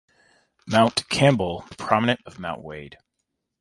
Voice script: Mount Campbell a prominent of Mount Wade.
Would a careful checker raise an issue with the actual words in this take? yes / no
no